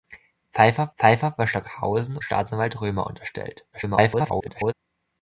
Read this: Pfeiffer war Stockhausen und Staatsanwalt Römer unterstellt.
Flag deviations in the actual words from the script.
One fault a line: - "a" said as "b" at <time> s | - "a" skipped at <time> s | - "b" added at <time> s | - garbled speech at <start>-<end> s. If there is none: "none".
- "pfeiffer" added at 1.0 s
- "und" skipped at 2.2 s
- garbled speech at 3.7-4.7 s